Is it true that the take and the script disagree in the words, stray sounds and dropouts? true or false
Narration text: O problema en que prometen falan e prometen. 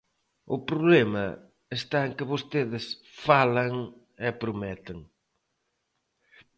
true